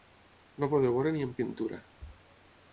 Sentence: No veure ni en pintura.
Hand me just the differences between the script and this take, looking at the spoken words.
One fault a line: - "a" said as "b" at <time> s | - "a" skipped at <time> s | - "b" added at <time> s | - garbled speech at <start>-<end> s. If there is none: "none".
- "poder" added at 0.7 s